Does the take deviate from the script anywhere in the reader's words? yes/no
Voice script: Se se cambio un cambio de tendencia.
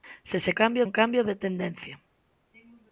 no